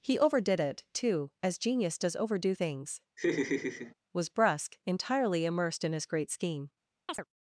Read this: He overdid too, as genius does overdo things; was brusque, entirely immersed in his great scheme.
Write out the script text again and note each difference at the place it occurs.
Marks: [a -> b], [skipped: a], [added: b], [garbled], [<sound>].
He overdid [added: it] too, as genius does overdo things; [laugh] was brusque, entirely immersed in his great scheme. [chirp]